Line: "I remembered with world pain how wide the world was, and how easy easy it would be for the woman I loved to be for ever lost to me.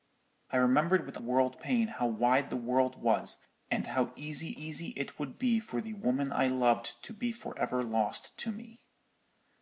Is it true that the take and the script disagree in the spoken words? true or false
false